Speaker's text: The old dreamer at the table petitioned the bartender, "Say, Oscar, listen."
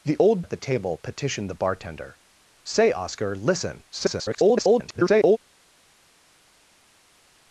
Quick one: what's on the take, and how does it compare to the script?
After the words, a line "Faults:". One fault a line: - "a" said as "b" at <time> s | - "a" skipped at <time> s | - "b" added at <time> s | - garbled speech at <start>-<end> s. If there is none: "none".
The old at the table petitioned the bartender, "Say, Oscar, listen." [garbled]
Faults:
- "dreamer" skipped at 0.4 s
- garbled speech at 3.9-5.4 s